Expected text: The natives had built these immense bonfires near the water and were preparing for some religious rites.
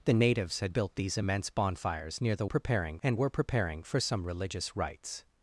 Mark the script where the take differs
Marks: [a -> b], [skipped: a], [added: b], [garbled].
The natives had built these immense bonfires near the [water -> preparing] and were preparing for some religious rites.